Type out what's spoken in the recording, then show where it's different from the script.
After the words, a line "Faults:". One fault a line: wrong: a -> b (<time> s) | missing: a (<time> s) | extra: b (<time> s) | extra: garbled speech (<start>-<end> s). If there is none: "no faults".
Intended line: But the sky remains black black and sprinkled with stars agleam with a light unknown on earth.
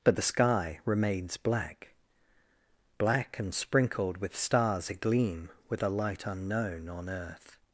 But the sky remains black black and sprinkled with stars agleam with a light unknown on earth.
Faults:
no faults